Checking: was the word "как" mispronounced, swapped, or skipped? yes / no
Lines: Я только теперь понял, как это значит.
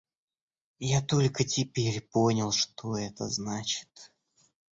yes